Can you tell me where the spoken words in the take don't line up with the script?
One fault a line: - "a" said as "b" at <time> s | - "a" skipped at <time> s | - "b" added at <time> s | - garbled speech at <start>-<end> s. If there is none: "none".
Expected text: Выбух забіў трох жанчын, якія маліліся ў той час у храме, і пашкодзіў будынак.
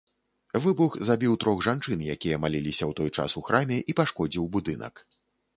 none